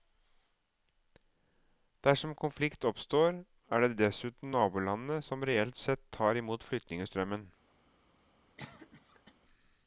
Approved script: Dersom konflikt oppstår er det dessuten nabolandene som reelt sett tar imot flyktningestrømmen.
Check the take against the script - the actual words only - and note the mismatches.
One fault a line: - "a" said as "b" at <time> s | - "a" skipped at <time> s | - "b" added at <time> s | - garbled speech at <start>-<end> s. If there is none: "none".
none